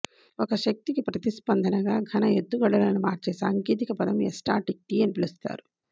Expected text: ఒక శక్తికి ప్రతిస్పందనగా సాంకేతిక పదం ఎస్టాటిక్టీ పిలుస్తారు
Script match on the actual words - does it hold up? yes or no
no